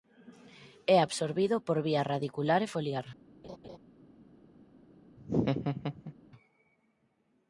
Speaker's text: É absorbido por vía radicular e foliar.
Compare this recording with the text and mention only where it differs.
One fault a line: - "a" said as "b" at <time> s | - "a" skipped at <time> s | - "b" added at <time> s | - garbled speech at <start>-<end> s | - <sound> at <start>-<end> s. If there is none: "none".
- laugh at 3.4-3.8 s
- laugh at 5.2-6.1 s